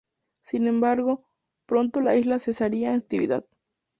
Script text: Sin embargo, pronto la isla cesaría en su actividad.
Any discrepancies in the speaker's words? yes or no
yes